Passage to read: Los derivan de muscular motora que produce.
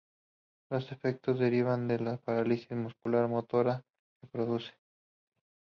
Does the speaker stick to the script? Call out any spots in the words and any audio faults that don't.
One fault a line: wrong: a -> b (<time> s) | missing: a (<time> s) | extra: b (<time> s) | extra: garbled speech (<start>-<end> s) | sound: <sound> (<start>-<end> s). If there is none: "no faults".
extra: efectos (0.9 s)
extra: la parálisis (2.0 s)